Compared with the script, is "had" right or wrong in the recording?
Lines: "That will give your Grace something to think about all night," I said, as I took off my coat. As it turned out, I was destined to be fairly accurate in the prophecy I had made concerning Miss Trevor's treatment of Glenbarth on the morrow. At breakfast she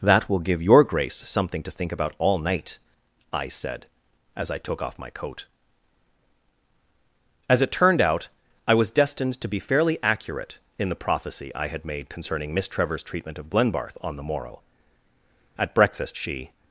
right